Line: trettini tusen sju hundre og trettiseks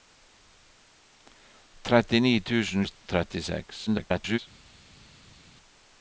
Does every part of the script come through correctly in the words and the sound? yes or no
no